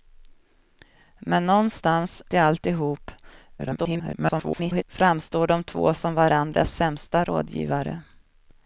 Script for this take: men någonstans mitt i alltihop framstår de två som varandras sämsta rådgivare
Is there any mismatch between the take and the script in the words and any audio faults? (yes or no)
yes